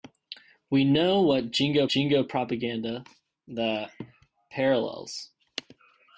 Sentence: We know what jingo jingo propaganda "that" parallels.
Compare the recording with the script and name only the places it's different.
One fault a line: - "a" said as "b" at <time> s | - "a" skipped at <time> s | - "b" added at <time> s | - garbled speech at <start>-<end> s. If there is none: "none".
none